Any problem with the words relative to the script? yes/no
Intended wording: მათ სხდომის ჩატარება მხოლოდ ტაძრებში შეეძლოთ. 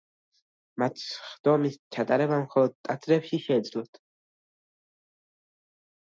no